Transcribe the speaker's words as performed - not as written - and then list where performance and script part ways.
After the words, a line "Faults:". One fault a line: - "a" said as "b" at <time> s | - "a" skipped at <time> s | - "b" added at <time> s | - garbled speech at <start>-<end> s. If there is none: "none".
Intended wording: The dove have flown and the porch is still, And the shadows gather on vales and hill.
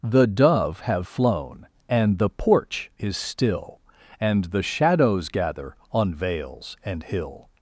The dove have flown and the porch is still, And the shadows gather on vales and hill.
Faults:
none